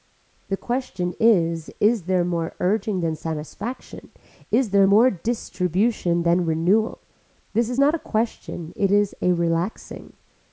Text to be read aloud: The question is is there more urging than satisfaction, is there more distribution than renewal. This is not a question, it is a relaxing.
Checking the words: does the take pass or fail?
pass